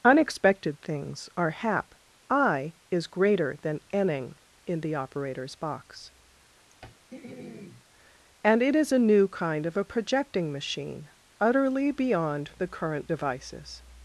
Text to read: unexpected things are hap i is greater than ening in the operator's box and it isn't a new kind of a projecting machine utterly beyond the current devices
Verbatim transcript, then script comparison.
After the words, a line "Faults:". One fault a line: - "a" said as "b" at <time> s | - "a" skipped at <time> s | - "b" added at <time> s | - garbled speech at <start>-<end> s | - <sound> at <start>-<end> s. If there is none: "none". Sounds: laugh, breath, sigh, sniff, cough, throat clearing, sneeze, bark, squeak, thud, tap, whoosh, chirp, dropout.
unexpected things are hap i is greater than ening in the operator's box and it is a new kind of a projecting machine utterly beyond the current devices
Faults:
- throat clearing at 6.7-7.8 s
- "isn't" said as "is" at 8.7 s